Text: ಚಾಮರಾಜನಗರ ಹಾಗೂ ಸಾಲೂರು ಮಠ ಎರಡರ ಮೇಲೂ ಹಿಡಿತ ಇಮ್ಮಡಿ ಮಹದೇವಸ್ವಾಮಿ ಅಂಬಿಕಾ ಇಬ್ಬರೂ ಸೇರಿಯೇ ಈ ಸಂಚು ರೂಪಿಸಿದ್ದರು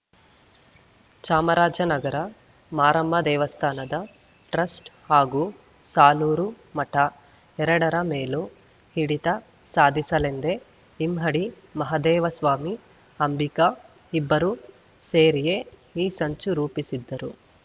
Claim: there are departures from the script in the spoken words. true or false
true